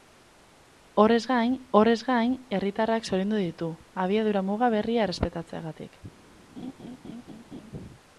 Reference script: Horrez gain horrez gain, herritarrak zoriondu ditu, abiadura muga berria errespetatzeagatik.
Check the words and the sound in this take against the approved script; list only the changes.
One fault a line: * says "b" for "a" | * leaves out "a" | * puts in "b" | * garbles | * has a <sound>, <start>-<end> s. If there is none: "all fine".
* has a laugh, 6.6-7.7 s